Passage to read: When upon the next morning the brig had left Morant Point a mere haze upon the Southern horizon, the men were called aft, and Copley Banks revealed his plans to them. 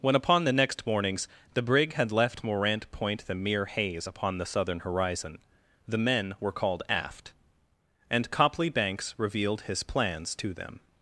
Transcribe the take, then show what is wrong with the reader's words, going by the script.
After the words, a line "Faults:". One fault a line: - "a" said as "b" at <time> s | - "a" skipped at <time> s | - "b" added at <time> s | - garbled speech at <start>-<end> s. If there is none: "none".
When upon the next mornings the brig had left Morant Point the mere haze upon the Southern horizon, the men were called aft, and Copley Banks revealed his plans to them.
Faults:
- "morning" said as "mornings" at 0.9 s
- "a" said as "the" at 3.3 s